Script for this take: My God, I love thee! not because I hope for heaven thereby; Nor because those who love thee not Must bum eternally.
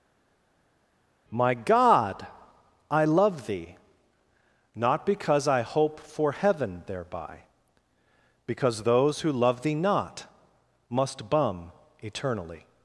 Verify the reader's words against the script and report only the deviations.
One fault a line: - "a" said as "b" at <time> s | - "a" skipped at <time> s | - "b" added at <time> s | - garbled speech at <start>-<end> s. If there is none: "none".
- "Nor" skipped at 7.4 s